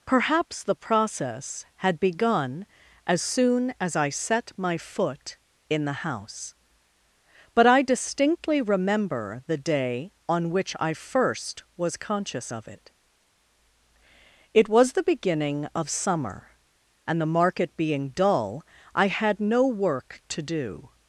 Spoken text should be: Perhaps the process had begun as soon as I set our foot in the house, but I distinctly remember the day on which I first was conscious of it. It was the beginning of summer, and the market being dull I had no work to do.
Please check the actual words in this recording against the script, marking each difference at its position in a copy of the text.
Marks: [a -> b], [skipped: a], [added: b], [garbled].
Perhaps the process had begun as soon as I set [our -> my] foot in the house, but I distinctly remember the day on which I first was conscious of it. It was the beginning of summer, and the market being dull I had no work to do.